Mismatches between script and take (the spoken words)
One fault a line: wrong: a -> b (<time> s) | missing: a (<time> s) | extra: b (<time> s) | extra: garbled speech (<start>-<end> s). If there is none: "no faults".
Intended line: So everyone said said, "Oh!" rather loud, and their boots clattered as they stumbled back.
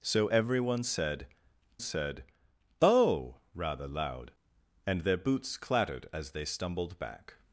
no faults